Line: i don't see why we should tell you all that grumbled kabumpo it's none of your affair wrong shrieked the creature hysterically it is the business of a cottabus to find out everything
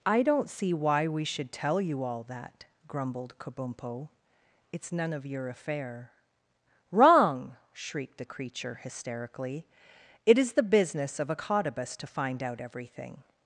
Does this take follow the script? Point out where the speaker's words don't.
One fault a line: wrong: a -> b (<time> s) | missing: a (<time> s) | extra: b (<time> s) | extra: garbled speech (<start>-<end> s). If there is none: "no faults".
no faults